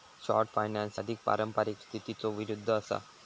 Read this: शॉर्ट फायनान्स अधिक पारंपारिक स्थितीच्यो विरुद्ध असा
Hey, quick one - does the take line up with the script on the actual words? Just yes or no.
yes